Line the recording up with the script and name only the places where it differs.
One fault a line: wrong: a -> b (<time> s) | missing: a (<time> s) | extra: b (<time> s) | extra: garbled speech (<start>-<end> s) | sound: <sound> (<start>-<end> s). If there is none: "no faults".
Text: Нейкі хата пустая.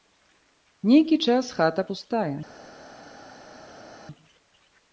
extra: час (1.3 s)